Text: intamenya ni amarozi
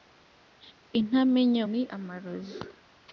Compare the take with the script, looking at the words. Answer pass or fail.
pass